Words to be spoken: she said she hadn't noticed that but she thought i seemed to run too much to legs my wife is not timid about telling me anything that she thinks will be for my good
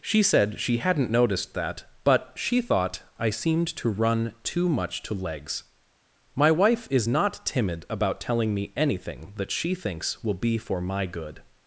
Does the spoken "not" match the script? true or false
true